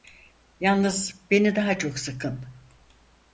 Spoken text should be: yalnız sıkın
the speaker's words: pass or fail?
fail